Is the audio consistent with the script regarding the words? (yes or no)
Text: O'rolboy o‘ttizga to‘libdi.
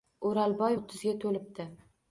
yes